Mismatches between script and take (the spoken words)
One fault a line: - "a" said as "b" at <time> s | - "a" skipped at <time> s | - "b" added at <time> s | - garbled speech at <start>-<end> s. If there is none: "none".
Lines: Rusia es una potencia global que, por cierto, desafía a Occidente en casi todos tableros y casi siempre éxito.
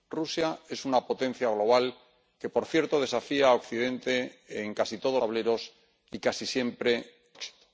none